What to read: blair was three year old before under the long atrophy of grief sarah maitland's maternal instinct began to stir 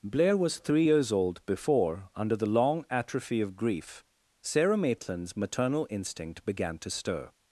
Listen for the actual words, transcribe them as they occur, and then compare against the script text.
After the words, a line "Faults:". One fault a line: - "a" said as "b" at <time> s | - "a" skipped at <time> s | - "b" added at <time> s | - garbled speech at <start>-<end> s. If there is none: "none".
blair was three years old before under the long atrophy of grief sarah maitland's maternal instinct began to stir
Faults:
- "year" said as "years" at 0.8 s